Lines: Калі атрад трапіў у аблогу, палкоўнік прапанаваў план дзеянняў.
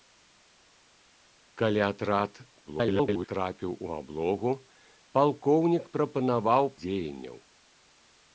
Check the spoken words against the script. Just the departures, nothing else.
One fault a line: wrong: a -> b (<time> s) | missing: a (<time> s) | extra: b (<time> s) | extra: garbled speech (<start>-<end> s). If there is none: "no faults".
extra: garbled speech (2.6-3.3 s)
missing: план (6.6 s)